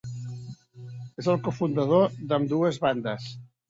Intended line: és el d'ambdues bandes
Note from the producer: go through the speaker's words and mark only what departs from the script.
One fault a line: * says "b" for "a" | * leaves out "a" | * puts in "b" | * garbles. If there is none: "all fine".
* puts in "cofundador"